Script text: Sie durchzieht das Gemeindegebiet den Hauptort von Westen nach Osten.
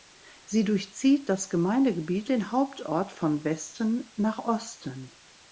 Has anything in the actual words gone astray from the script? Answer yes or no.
no